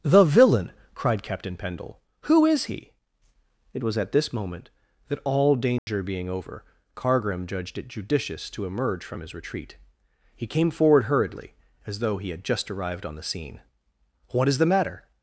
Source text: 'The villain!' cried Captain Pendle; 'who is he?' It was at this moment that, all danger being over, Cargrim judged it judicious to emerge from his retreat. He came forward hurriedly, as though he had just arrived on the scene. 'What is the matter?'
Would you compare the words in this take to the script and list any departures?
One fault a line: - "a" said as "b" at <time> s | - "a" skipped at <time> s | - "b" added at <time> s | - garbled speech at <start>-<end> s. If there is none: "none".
none